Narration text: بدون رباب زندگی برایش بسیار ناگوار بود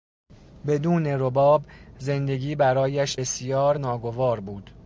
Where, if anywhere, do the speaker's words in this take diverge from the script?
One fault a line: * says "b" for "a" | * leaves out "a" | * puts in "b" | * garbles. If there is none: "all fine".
all fine